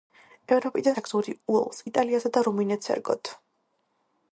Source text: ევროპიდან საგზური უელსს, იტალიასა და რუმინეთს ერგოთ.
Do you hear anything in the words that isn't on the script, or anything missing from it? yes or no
no